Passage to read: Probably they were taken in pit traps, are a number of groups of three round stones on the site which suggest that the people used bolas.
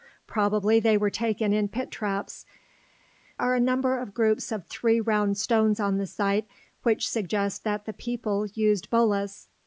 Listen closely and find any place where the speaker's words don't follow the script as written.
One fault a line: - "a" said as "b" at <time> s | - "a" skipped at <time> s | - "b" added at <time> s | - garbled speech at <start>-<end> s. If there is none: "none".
none